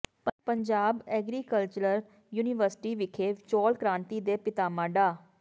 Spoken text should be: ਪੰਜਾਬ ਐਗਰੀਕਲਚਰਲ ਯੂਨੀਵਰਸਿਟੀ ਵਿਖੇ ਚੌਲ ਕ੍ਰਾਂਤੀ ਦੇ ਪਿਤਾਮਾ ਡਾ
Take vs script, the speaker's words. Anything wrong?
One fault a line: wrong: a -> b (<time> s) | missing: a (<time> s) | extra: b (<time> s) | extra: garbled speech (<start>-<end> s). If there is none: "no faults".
no faults